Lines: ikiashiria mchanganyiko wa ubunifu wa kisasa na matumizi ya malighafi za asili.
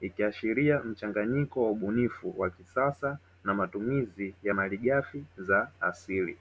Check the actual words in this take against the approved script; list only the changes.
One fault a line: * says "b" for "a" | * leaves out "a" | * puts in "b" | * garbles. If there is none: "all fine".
all fine